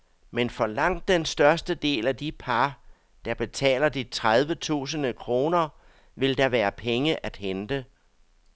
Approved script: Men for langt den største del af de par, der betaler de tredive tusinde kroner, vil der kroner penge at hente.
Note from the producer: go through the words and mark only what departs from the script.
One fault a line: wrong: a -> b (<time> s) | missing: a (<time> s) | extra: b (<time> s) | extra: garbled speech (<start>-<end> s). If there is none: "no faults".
wrong: kroner -> være (6.5 s)